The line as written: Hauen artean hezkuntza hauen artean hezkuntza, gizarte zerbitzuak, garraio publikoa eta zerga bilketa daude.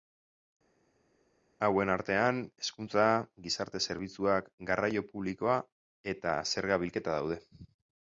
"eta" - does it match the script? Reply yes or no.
yes